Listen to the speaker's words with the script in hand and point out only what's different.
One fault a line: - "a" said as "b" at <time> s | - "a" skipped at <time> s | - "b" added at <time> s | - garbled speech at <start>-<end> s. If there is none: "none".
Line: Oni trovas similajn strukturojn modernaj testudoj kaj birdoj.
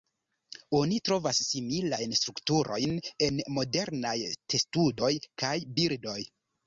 - "en" added at 3.3 s